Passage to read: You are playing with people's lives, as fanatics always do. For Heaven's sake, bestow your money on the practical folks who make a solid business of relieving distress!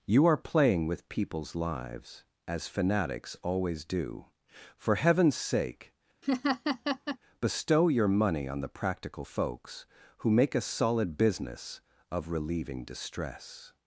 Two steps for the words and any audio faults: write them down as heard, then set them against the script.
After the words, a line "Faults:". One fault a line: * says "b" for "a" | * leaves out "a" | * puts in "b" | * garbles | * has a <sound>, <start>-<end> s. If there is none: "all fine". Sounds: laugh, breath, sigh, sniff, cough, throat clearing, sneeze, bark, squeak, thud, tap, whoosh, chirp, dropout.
You are playing with people's lives, as fanatics always do. For Heaven's sake, bestow your money on the practical folks who make a solid business of relieving distress!
Faults:
* has a laugh, 6.2-7.2 s